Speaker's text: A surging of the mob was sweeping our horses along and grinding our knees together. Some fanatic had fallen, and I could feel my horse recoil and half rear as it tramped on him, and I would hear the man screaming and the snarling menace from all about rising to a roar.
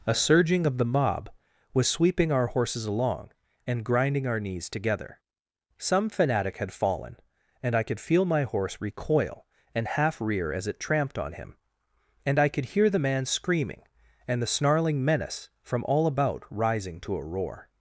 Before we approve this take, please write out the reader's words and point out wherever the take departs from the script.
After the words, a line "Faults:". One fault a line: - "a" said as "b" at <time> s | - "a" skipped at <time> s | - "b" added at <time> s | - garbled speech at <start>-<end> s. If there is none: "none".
A surging of the mob was sweeping our horses along and grinding our knees together. Some fanatic had fallen, and I could feel my horse recoil and half rear as it tramped on him, and I could hear the man screaming and the snarling menace from all about rising to a roar.
Faults:
- "would" said as "could" at 12.5 s